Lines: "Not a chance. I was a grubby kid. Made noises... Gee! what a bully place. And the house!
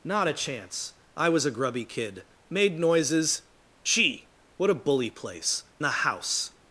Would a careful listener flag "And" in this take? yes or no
yes